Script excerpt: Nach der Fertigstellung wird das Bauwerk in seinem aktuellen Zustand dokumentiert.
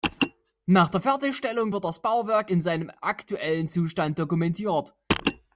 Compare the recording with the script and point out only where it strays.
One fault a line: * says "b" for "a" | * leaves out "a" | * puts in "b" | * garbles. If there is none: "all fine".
all fine